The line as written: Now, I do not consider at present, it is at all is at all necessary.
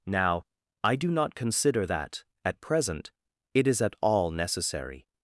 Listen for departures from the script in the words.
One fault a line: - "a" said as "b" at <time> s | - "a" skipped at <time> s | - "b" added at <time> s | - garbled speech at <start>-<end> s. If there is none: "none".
- "that" added at 1.8 s
- "is at all" skipped at 4.3 s